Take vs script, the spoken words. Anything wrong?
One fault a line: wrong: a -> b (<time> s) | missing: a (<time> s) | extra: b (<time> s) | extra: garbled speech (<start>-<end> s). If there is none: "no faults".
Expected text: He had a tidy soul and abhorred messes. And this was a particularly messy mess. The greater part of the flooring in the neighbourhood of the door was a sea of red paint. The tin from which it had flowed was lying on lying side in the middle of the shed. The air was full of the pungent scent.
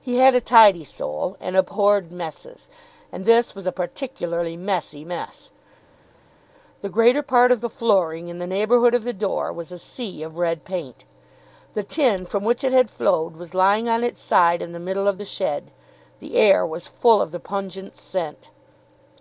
wrong: lying -> its (14.0 s)